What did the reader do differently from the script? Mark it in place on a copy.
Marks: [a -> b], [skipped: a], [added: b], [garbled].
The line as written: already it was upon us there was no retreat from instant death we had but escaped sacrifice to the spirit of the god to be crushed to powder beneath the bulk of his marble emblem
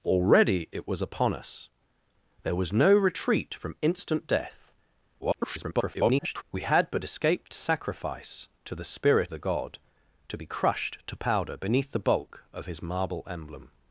already it was upon us there was no retreat from instant death [garbled] we had but escaped sacrifice to the spirit [skipped: of] the god to be crushed to powder beneath the bulk of his marble emblem